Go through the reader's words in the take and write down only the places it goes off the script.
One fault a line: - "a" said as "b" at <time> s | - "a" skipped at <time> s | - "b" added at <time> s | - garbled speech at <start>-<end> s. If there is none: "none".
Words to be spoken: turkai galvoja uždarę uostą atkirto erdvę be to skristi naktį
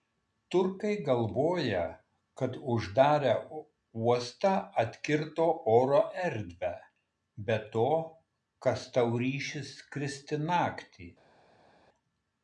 - "kad" added at 2.4 s
- "oro" added at 5.8 s
- "kas tau ryšis" added at 8.7 s